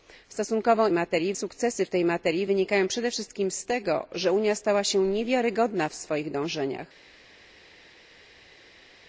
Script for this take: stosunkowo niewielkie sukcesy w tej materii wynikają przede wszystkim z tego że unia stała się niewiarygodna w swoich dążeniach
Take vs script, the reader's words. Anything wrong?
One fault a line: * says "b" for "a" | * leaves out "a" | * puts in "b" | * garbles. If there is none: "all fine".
* says "materii" for "niewielkie"